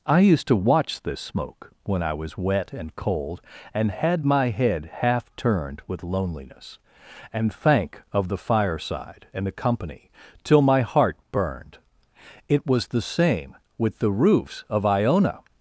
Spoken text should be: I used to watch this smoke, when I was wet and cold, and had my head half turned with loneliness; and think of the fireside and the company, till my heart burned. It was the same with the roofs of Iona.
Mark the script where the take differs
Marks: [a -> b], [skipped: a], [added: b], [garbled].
I used to watch this smoke, when I was wet and cold, and had my head half turned with loneliness; and [think -> thank] of the fireside and the company, till my heart burned. It was the same with the roofs of Iona.